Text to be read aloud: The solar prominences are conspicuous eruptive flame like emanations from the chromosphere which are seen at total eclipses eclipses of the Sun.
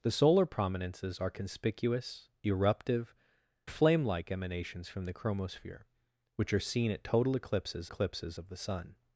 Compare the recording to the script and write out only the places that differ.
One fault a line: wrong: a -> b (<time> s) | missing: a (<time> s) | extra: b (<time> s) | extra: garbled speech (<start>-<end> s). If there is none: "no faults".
no faults